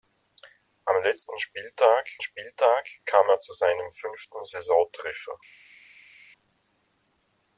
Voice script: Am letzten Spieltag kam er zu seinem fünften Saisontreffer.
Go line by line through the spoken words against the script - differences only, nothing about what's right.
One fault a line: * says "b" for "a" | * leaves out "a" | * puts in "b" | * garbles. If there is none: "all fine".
* puts in "Spieltag"